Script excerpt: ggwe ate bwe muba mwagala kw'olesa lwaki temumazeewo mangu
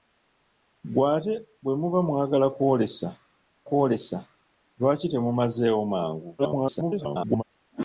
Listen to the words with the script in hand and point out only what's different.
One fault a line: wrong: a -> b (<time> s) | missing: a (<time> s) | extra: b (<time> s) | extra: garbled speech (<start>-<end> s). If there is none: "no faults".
extra: kw'olesa (3.7 s)
extra: garbled speech (6.4-7.4 s)